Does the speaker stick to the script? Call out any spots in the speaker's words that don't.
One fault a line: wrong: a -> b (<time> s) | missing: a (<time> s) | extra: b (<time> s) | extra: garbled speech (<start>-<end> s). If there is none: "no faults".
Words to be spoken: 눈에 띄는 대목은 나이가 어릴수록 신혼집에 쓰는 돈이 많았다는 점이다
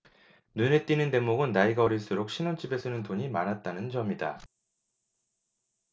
no faults